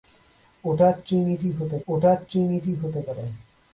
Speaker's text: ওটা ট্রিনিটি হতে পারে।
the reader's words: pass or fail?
fail